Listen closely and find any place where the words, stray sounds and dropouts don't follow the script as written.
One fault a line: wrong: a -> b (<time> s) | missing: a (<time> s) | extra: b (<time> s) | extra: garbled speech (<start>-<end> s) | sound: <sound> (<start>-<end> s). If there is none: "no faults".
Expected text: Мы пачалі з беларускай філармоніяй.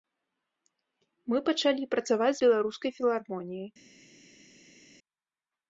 extra: працаваць (1.9 s)